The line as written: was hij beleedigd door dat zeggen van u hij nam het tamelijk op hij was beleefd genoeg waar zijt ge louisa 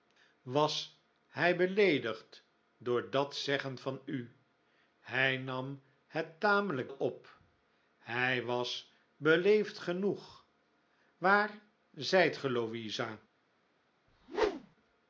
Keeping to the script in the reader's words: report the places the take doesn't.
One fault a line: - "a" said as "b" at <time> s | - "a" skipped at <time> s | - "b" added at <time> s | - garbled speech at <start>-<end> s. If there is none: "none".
none